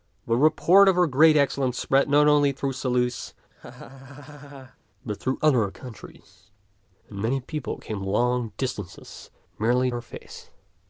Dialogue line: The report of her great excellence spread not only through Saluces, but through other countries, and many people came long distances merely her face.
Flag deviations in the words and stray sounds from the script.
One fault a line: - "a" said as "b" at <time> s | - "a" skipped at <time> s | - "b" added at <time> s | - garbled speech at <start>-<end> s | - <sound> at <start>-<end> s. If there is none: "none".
- laugh at 3.5-4.8 s